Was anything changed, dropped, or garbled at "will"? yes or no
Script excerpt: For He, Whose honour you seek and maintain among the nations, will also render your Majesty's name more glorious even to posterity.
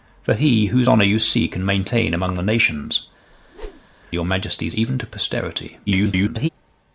yes